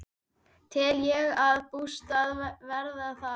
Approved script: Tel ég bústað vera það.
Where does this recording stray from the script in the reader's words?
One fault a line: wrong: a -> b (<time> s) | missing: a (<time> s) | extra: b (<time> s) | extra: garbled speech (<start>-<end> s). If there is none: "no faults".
no faults